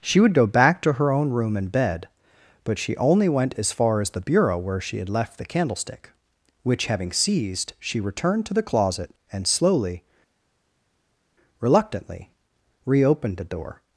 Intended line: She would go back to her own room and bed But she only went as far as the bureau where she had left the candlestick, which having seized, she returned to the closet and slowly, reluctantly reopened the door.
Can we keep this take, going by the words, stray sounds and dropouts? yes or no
yes